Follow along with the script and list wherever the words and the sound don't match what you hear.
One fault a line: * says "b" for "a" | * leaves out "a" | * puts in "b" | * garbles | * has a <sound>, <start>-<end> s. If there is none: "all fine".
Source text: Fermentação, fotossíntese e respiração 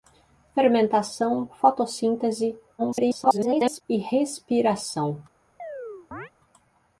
* garbles
* has a chirp, 5.6-6.3 s